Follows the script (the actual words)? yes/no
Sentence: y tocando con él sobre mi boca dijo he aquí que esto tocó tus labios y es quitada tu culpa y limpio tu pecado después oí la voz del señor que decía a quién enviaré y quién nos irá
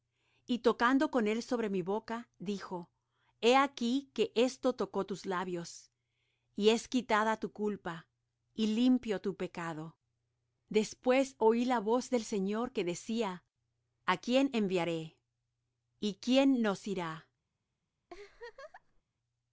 yes